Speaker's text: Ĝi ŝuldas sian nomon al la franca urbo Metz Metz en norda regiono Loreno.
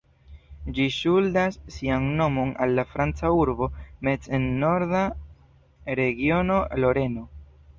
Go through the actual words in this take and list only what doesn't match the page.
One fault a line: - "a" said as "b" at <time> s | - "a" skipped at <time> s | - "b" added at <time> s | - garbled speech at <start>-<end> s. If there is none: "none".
- "Metz" skipped at 4.3 s